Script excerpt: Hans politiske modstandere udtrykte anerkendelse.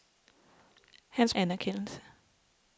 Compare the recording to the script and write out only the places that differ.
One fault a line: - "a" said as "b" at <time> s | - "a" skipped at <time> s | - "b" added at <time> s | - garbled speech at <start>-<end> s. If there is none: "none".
- "politiske modstandere udtrykte" skipped at 1.4 s